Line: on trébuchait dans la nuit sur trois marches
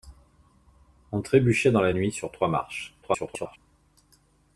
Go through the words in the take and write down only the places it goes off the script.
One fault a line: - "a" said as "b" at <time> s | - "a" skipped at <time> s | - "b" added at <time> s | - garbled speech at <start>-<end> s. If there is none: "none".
- garbled speech at 3.0-3.6 s